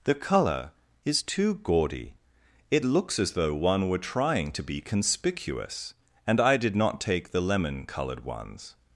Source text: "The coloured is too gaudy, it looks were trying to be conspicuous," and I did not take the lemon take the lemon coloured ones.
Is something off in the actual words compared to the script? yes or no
yes